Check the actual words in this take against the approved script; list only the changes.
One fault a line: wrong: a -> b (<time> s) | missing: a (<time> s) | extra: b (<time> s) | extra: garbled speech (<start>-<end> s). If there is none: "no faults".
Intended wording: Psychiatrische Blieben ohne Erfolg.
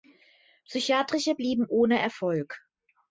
no faults